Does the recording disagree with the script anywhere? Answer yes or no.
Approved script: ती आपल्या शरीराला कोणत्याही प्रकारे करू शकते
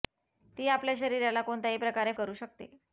no